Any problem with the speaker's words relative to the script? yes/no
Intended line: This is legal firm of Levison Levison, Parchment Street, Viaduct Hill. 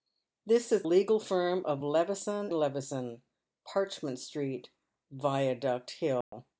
no